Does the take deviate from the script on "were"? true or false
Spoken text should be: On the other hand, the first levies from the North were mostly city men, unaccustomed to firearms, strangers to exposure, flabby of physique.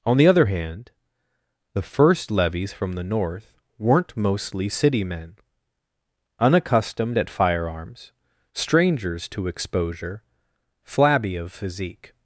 true